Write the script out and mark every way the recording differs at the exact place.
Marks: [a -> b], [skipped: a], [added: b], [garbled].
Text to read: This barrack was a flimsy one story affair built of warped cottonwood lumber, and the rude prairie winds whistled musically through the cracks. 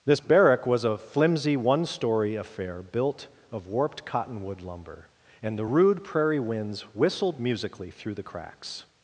This barrack was a flimsy one story affair built of warped cottonwood lumber, and the rude prairie winds whistled musically through the cracks.